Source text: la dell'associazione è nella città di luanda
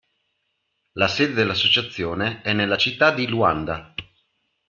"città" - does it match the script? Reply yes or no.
yes